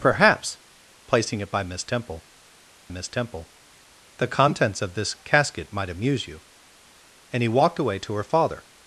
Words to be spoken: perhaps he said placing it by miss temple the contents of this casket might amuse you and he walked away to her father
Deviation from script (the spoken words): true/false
true